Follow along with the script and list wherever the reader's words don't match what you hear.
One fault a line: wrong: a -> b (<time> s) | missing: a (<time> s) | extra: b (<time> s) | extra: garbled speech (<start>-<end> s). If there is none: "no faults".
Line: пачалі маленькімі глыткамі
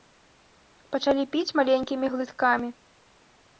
extra: піць (1.4 s)